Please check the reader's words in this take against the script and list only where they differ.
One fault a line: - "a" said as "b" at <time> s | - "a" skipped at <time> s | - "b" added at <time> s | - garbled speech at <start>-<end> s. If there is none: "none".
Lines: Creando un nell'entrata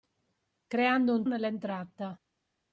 none